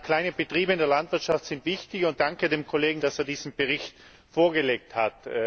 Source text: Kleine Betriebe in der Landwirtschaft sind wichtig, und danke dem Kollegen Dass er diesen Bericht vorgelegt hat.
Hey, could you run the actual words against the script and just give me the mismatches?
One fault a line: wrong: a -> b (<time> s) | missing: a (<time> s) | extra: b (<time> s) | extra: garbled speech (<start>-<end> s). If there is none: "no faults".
no faults